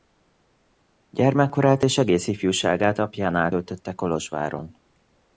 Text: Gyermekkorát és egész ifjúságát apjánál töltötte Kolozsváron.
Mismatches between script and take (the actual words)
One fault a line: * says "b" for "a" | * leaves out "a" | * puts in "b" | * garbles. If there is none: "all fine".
all fine